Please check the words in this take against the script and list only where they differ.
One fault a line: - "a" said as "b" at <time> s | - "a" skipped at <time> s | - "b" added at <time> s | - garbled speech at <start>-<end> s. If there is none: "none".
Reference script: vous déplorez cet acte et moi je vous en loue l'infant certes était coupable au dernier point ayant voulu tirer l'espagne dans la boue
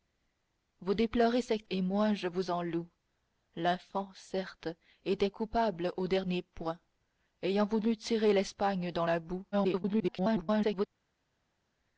- "acte" skipped at 1.7 s
- garbled speech at 9.5-10.9 s